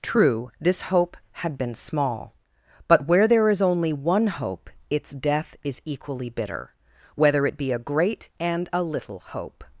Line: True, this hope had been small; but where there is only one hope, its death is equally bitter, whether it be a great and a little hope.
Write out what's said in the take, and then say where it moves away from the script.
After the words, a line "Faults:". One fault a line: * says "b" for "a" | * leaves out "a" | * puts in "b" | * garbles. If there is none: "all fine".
True, this hope had been small; but where there is only one hope, its death is equally bitter, whether it be a great and a little hope.
Faults:
all fine